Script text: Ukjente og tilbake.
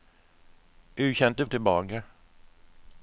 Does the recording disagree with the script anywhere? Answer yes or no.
no